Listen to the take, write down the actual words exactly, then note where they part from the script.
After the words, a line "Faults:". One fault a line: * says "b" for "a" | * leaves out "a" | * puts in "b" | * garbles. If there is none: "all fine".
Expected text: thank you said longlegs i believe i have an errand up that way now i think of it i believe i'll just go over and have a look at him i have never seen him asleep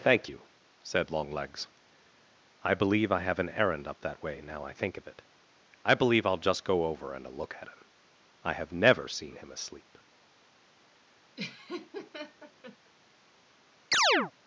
thank you said longlegs i believe i have an errand up that way now i think of it i believe i'll just go over and a look at him i have never seen him asleep
Faults:
* leaves out "have"